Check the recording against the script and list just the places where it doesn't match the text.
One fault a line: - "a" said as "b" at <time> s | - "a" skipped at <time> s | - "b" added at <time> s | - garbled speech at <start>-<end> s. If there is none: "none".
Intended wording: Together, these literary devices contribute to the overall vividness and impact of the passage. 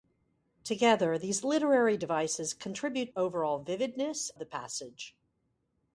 - "to the" skipped at 3.1 s
- "and impact of" skipped at 4.3 s